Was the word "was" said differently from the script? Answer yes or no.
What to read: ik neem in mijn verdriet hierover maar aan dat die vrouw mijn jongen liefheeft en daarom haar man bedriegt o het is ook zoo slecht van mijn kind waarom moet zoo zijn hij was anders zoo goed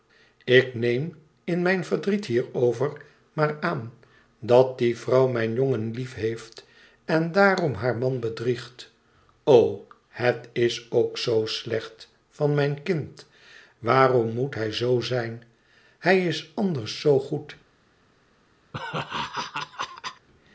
yes